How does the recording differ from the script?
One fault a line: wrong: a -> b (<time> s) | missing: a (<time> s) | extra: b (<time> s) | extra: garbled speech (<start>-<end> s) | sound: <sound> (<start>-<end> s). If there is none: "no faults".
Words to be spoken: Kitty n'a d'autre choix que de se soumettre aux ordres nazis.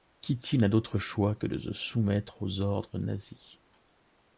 no faults